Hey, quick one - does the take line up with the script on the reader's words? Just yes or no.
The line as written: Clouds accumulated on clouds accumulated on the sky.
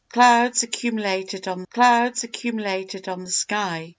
yes